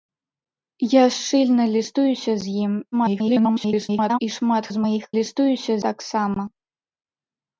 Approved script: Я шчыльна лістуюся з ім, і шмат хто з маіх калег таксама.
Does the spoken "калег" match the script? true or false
false